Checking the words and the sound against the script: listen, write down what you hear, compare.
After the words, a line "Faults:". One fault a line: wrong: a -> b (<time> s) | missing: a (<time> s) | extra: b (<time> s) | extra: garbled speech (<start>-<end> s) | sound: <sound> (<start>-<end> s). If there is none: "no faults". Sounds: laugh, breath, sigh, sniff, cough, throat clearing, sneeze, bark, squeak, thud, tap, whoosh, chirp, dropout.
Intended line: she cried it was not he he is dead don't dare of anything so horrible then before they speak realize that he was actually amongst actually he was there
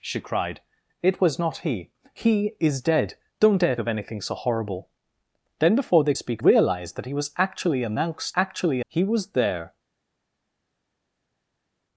she cried it was not he he is dead don't dare of anything so horrible then before they speak realize that he was actually amongst actually he was there
Faults:
no faults